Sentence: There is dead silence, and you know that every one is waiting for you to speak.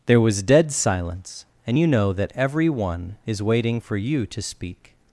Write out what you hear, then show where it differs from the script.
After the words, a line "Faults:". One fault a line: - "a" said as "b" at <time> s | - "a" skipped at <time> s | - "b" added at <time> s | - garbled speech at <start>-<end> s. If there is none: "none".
There was dead silence, and you know that every one is waiting for you to speak.
Faults:
- "is" said as "was" at 0.2 s